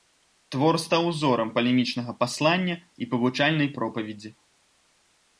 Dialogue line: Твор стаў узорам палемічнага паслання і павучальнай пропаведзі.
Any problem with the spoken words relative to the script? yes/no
no